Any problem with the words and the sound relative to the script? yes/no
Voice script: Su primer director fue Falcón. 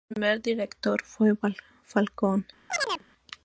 yes